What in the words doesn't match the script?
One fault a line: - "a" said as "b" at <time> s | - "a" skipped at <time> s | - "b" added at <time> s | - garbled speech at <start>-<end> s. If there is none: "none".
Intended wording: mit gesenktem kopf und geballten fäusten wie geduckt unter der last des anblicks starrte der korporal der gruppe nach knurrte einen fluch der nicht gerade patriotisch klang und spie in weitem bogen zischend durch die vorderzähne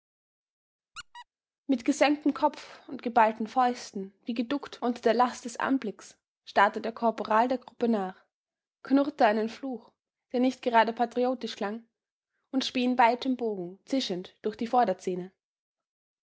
none